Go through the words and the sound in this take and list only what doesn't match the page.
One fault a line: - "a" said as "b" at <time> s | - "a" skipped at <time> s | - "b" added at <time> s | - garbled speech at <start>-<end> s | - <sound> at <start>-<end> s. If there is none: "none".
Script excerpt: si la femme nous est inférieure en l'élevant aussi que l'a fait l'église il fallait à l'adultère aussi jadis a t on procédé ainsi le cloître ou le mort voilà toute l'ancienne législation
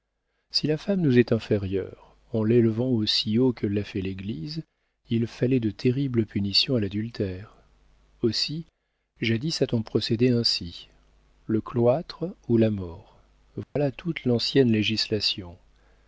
- "haut" added at 3.4 s
- "de terribles punitions" added at 5.6 s
- "le" said as "la" at 12.6 s
- dropout at 13.6-13.8 s